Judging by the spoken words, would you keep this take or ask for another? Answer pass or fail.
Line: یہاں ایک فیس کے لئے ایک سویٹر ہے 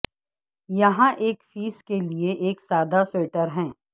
fail